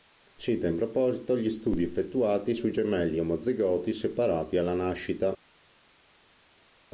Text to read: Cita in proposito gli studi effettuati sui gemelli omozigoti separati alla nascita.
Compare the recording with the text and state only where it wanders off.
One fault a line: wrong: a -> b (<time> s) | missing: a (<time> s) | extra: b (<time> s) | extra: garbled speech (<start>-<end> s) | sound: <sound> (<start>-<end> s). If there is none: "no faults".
no faults